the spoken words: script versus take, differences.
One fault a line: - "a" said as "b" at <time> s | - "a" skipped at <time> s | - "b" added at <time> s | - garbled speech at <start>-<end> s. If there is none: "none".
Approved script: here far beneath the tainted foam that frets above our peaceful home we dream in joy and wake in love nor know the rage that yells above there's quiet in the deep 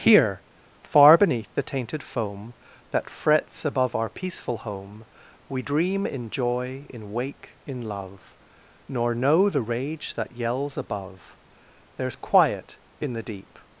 - "and" said as "in" at 6.9 s